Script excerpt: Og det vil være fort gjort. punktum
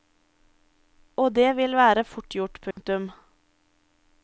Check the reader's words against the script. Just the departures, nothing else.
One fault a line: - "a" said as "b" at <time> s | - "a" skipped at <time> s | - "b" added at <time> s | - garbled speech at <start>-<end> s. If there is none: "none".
none